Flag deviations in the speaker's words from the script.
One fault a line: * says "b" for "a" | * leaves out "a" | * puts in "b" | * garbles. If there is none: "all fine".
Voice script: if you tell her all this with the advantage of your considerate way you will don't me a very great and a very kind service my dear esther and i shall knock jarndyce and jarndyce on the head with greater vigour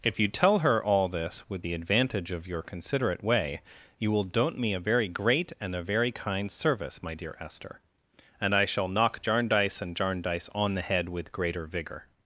all fine